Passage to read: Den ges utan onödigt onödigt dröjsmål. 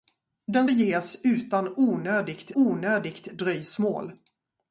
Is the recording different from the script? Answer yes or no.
no